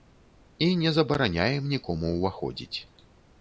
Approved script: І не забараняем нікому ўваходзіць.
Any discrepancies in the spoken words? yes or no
no